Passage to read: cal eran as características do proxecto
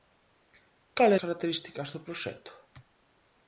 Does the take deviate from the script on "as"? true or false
true